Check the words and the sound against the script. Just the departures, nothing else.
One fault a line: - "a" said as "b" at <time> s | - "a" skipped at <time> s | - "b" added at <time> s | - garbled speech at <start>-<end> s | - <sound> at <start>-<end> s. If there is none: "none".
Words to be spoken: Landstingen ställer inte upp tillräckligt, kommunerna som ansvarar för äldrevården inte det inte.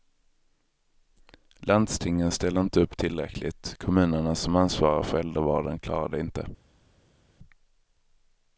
- "inte" said as "klarar" at 5.8 s